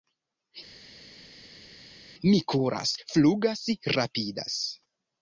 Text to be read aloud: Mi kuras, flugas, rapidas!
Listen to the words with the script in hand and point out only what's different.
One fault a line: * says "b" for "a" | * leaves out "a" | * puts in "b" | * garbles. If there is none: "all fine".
all fine